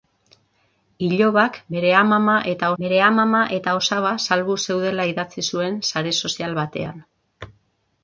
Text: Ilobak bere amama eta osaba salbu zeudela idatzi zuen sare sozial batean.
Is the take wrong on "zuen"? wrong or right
right